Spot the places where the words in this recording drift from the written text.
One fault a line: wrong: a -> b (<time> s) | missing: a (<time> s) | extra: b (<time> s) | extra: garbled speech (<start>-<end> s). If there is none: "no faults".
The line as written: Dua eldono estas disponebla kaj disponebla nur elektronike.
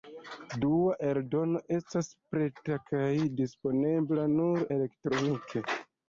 wrong: disponebla -> preta (2.4 s)